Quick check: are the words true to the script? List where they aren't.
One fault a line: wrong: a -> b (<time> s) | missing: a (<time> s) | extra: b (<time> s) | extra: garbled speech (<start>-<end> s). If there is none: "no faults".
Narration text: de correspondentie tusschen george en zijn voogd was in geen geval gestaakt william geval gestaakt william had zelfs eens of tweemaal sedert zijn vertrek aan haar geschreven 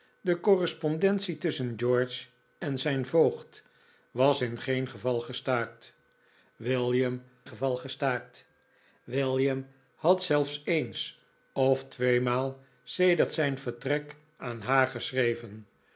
no faults